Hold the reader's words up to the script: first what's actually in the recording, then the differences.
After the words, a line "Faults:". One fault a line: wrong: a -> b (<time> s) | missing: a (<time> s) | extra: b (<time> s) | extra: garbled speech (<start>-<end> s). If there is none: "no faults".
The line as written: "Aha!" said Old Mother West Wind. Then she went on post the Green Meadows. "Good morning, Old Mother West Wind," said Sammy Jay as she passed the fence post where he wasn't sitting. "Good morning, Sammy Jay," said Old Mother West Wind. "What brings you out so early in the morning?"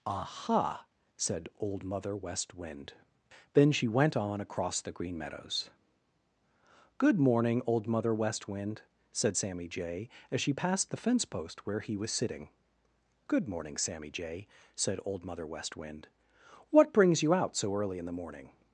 "Aha!" said Old Mother West Wind. Then she went on across the Green Meadows. "Good morning, Old Mother West Wind," said Sammy Jay as she passed the fence post where he was sitting. "Good morning, Sammy Jay," said Old Mother West Wind. "What brings you out so early in the morning?"
Faults:
wrong: post -> across (4.4 s)
wrong: wasn't -> was (12.0 s)